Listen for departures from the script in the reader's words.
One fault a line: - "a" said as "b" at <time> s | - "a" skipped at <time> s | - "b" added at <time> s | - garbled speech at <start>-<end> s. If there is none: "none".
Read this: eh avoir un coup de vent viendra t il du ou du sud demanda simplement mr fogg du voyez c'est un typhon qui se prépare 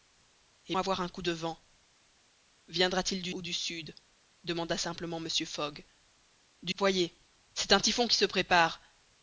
none